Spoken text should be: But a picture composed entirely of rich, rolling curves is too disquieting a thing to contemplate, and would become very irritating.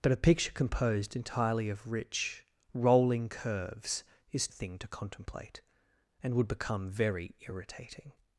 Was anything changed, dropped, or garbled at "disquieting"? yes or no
yes